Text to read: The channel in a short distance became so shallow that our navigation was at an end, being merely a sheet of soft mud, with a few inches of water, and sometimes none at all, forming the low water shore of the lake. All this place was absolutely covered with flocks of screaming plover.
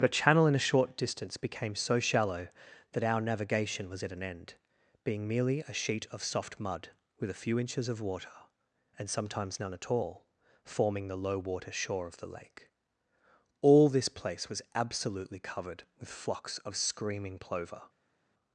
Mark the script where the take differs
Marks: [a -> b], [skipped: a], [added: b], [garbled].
[The -> But a] channel in a short distance became so shallow that our navigation was at an end, being merely a sheet of soft mud, with a few inches of water, and sometimes none at all, forming the low water shore of the lake. All this place was absolutely covered with flocks of screaming plover.